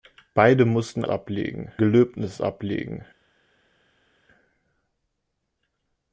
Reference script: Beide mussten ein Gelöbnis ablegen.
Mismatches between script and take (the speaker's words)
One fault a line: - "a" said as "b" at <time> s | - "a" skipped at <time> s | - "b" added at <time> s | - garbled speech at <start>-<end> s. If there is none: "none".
- "ein" said as "ablegen" at 1.1 s